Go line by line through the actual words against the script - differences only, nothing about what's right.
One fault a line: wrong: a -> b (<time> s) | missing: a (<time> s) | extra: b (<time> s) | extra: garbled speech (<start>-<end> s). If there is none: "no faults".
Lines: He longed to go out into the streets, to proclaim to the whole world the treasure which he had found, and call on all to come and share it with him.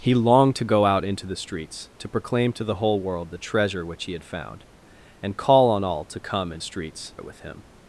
wrong: share -> streets (6.6 s)